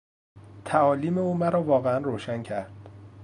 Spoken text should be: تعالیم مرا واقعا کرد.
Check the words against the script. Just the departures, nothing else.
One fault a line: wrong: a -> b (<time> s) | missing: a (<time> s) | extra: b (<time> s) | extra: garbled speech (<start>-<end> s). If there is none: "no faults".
extra: او (1.2 s)
extra: روشن (2.0 s)